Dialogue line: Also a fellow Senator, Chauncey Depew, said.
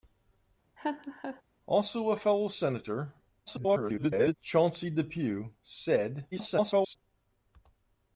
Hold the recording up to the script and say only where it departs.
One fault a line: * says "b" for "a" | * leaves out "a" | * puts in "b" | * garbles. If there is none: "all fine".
* garbles
* garbles